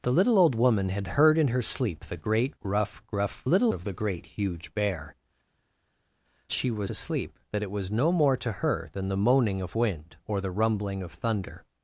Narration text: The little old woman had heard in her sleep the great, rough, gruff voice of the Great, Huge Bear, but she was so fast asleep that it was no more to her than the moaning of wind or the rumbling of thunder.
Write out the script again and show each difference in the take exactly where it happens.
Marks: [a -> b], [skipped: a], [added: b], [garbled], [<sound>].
The little old woman had heard in her sleep the great, rough, gruff [voice -> little] of the Great, Huge Bear, [skipped: but] she was [skipped: so fast] asleep that it was no more to her than the moaning of wind or the rumbling of thunder.